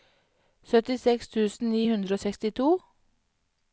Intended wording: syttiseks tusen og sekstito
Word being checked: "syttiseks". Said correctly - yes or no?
yes